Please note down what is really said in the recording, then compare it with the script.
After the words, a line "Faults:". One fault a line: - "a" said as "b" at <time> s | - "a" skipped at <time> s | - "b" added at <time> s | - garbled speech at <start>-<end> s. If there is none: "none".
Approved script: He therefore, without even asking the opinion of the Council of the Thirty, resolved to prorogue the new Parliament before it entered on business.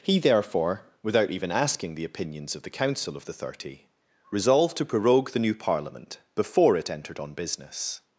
He therefore, without even asking the opinions of the Council of the Thirty, resolved to prorogue the new Parliament before it entered on business.
Faults:
- "opinion" said as "opinions" at 2.0 s